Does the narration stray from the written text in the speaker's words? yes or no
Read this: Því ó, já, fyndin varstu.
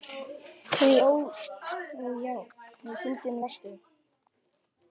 no